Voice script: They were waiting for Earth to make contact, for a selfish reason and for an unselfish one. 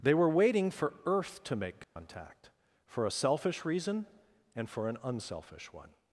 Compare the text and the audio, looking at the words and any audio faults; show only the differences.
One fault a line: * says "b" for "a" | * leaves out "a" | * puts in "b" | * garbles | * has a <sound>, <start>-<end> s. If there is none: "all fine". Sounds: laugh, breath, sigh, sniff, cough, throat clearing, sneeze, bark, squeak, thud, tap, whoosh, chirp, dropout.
* has a dropout, 1.8-2.0 s